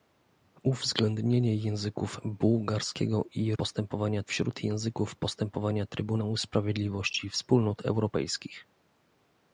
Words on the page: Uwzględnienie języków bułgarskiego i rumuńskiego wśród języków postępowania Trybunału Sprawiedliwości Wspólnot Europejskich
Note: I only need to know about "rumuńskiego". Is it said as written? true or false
false